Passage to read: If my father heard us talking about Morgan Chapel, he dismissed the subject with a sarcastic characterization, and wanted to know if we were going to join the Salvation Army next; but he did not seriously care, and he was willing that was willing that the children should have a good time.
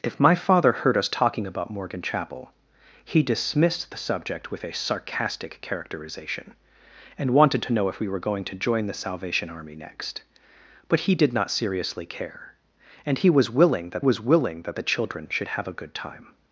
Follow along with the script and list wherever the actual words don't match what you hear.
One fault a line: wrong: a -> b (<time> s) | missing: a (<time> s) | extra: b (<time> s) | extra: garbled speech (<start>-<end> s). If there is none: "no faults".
no faults